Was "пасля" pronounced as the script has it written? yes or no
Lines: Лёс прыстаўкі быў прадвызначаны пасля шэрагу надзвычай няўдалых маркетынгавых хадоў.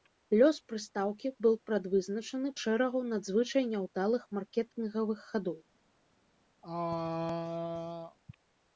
no